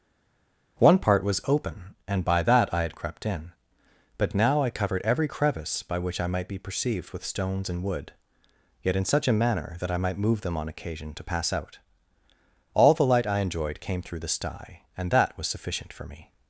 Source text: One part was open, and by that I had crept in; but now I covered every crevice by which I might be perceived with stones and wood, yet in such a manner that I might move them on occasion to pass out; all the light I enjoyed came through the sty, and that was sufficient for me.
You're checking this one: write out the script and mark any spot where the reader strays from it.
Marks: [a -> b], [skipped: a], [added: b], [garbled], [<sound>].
One part was open, and by that I had crept in; but now I covered every crevice by which I might be perceived with stones and wood, yet in such a manner that I might move them on occasion to pass out; all the light I enjoyed came through the sty, and that was sufficient for me.